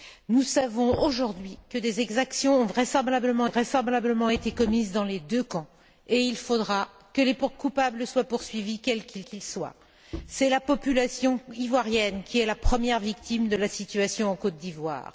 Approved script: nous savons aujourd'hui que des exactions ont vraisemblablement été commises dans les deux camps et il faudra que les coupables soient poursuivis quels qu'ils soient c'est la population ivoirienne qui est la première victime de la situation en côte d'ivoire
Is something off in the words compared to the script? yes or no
yes